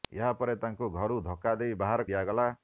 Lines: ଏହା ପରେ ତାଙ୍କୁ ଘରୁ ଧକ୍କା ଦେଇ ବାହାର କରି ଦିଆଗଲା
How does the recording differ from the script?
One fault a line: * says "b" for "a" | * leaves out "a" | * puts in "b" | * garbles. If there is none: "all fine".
* leaves out "କରି"